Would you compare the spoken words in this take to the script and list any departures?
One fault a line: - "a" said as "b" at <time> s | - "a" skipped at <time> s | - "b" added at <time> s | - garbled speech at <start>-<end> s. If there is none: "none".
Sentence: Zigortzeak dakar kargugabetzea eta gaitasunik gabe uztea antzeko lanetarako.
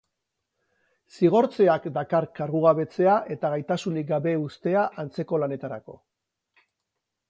none